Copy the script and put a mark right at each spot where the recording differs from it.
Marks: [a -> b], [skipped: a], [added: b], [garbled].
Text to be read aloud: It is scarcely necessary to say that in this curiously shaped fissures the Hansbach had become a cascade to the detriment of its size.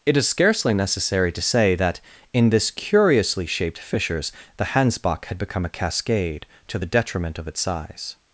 It is scarcely necessary to say that in this curiously shaped fissures the Hansbach had become a cascade to the detriment of its size.